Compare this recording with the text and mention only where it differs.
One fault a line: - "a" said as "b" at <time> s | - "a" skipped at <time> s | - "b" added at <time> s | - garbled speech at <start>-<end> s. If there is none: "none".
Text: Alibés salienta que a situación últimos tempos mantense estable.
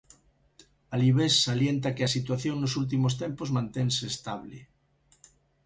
- "nos" added at 2.6 s